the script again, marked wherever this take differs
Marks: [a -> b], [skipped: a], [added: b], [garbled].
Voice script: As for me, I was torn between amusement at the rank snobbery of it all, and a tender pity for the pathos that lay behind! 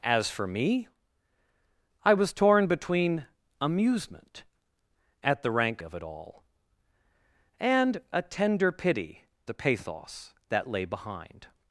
As for me, I was torn between amusement at the rank [skipped: snobbery] of it all, and a tender pity [skipped: for] the pathos that lay behind!